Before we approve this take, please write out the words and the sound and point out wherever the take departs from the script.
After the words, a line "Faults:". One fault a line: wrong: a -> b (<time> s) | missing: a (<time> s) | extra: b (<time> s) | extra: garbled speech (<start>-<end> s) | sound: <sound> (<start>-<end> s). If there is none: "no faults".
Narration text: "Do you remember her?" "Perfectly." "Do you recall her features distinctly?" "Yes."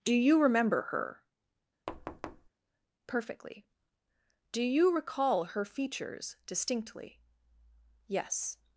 "Do you remember her?" "Perfectly." "Do you recall her features distinctly?" "Yes."
Faults:
sound: thud (1.9-2.5 s)